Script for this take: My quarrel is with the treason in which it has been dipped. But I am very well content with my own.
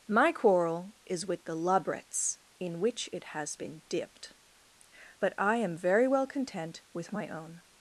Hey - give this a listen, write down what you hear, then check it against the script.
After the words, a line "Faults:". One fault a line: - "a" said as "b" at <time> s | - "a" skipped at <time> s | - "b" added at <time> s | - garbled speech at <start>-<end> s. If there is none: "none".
My quarrel is with the labrets in which it has been dipped. But I am very well content with my own.
Faults:
- "treason" said as "labrets" at 1.6 s